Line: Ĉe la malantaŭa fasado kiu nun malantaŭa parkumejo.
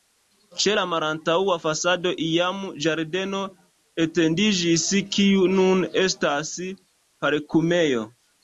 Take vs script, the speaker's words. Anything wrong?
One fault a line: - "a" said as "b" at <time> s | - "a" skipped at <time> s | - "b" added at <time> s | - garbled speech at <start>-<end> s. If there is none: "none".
- "iam ĝardeno etendiĝis" added at 2.3 s
- "malantaŭa" said as "estas" at 6.1 s